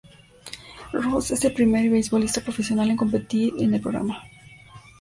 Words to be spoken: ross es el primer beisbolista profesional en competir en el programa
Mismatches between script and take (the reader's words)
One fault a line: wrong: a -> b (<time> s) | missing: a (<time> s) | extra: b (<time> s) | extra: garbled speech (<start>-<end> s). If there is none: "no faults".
no faults